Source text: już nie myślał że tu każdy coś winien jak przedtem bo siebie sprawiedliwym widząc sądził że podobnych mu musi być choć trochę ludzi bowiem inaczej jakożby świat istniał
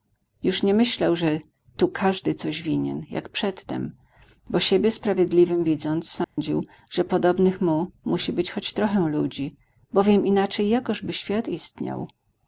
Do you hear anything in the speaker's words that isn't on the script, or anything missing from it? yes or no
no